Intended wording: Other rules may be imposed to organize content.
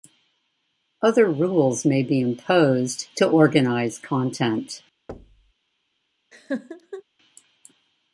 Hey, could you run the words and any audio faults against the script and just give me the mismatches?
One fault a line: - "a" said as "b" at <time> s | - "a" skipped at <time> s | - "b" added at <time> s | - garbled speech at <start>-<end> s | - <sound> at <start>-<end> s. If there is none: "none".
- thud at 5.1-5.5 s
- laugh at 6.3-7.0 s